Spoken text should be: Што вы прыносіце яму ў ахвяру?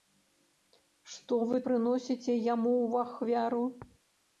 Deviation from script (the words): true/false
false